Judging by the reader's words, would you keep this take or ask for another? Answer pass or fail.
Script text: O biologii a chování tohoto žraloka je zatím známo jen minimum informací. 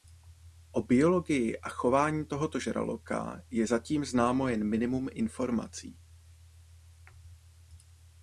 pass